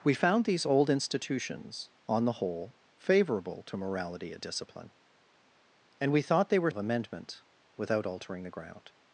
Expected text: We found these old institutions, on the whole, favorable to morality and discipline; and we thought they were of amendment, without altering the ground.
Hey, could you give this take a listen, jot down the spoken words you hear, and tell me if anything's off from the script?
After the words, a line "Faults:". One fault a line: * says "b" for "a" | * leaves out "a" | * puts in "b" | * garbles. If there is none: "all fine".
We found these old institutions, on the whole, favorable to morality and discipline; and we thought they were of amendment, without altering the ground.
Faults:
all fine